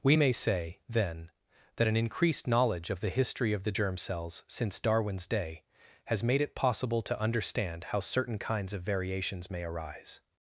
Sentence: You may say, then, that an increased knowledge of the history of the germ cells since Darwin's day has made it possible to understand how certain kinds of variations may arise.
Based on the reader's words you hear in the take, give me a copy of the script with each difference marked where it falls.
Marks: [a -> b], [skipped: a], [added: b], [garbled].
[You -> We] may say, then, that an increased knowledge of the history of the germ cells since Darwin's day has made it possible to understand how certain kinds of variations may arise.